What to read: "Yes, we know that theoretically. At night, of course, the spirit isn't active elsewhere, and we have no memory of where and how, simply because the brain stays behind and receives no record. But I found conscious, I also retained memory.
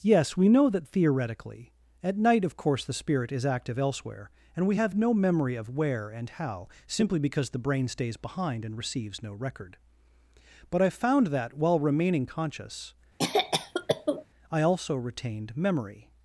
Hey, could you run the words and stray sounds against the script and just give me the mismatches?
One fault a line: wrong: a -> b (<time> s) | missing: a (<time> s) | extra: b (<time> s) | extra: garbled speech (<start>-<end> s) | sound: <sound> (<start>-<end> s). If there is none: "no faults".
wrong: isn't -> is (3.3 s)
extra: that while remaining (11.3 s)
sound: cough (13.2-14.3 s)